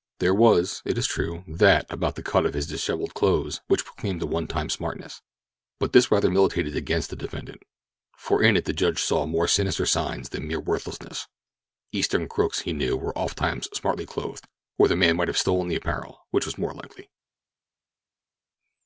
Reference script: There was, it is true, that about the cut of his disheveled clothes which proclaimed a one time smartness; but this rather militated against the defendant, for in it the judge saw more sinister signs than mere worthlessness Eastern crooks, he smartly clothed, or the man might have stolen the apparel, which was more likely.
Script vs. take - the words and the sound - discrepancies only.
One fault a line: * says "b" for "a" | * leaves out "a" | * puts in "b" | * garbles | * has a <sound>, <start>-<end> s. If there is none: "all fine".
* puts in "knew were ofttimes"